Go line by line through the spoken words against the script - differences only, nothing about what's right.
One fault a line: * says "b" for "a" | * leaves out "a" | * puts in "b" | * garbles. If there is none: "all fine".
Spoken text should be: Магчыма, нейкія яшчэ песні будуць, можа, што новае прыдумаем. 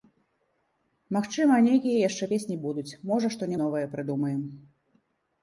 all fine